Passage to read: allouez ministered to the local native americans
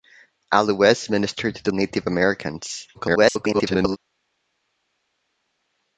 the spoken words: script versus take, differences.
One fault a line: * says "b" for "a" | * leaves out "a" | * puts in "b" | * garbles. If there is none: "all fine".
* leaves out "local"
* garbles